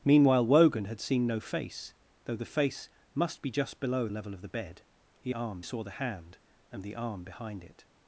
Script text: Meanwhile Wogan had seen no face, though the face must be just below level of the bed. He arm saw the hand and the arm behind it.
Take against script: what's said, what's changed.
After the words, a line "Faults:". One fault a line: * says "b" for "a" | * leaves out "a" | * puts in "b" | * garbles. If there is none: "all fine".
Meanwhile Wogan had seen no face, though the face must be just below level of the bed. He arm saw the hand and the arm behind it.
Faults:
all fine